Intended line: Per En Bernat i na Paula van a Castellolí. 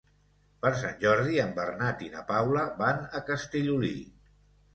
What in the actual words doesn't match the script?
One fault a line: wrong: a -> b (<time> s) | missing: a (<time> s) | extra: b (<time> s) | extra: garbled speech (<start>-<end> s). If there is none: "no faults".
extra: Sant Jordi (0.8 s)